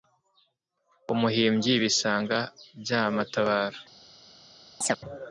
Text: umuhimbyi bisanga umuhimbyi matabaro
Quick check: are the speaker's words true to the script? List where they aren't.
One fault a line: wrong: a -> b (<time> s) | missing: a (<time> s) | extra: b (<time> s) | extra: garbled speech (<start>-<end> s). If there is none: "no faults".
wrong: umuhimbyi -> bya (2.8 s)